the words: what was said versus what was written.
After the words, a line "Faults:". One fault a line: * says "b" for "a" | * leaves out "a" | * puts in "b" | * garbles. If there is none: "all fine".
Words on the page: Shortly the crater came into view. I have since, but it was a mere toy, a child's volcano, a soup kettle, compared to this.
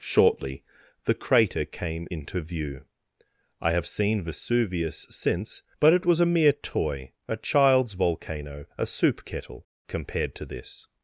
Shortly the crater came into view. I have seen Vesuvius since, but it was a mere toy, a child's volcano, a soup kettle, compared to this.
Faults:
* puts in "seen Vesuvius"